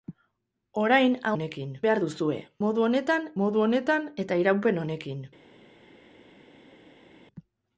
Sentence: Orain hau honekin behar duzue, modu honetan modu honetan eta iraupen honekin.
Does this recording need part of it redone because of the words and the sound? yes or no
no